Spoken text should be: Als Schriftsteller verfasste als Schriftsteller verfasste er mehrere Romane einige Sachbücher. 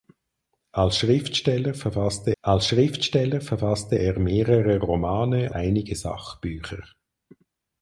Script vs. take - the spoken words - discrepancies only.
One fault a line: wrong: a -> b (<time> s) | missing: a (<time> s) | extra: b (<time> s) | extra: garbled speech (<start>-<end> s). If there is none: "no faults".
no faults